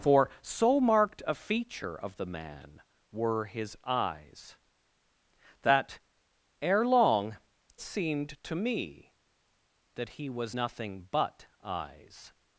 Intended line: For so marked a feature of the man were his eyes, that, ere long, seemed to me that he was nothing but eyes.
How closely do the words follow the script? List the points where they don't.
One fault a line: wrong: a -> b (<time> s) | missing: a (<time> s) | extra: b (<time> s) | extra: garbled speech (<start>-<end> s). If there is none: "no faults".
no faults